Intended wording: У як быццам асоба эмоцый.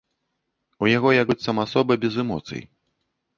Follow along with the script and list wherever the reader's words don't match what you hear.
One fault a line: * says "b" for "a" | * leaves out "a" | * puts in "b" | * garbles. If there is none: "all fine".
* puts in "яго"
* puts in "без"